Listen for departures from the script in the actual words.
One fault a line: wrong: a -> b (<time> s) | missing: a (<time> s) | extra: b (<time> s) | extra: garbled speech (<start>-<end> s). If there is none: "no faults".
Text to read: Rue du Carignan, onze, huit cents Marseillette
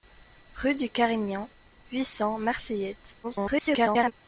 missing: onze (1.5 s)
extra: garbled speech (3.2-4.1 s)